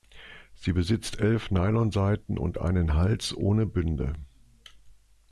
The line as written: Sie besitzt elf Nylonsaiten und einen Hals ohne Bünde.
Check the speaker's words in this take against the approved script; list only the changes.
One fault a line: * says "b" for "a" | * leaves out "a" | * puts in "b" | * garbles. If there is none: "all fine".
all fine